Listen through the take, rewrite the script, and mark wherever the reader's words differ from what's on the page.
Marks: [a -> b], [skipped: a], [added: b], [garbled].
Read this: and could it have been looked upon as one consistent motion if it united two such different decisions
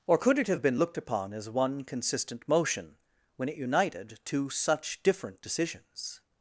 [and -> or] could it have been looked upon as one consistent motion [if -> when] it united two such different decisions